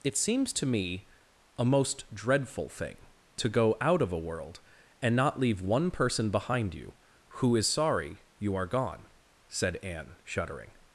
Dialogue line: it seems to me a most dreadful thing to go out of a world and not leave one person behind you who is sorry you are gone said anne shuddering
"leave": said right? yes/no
yes